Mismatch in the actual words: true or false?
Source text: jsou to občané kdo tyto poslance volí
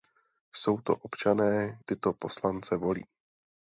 true